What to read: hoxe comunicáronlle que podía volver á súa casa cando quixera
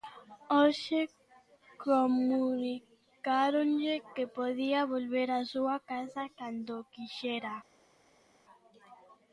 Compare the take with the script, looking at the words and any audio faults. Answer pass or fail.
pass